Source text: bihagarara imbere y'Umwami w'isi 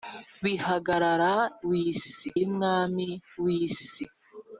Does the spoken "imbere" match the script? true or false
false